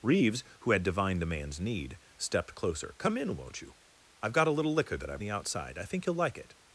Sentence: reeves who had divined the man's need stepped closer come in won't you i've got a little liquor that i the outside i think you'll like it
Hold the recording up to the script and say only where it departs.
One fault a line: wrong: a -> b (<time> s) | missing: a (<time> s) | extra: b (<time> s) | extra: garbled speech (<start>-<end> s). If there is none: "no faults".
no faults